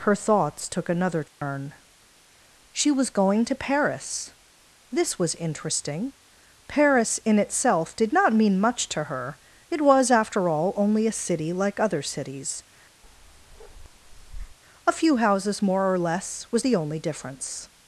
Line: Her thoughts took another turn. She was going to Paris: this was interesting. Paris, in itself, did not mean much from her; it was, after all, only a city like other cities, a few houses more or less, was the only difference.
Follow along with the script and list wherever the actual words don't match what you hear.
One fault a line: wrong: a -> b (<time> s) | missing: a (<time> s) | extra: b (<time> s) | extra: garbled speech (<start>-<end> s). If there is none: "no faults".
wrong: from -> to (8.9 s)